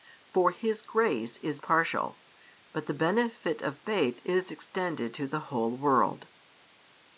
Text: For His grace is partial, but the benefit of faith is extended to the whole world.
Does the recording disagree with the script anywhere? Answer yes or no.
no